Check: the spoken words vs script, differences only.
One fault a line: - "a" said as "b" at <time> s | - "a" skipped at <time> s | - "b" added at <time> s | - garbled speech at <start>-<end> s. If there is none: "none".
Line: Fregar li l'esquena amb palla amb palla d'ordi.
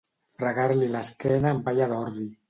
- "amb palla" skipped at 1.9 s